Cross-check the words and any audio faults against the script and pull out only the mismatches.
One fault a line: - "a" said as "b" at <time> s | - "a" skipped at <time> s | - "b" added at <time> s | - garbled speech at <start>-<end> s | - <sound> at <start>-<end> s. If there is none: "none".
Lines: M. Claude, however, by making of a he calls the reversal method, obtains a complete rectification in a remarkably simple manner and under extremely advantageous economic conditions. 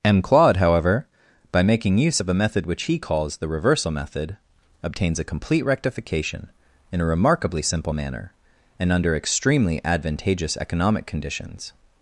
- "use" added at 2.0 s
- "method which" added at 2.4 s